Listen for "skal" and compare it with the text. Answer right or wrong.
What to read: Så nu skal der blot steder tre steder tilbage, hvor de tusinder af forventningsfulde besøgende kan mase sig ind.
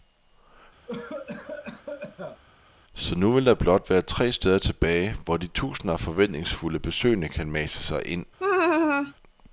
wrong